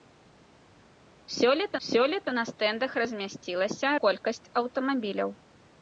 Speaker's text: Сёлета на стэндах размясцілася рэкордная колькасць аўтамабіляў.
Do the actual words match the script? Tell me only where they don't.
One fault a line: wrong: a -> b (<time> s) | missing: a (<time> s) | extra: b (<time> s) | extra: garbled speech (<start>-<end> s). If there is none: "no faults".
extra: сёлета (1.9 s)
missing: рэкордная (3.9 s)